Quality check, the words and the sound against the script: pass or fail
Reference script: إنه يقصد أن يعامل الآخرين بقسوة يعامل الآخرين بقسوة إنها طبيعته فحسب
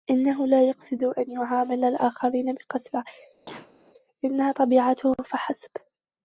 fail